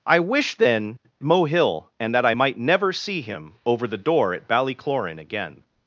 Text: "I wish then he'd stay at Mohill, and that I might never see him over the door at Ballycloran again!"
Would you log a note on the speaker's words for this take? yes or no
yes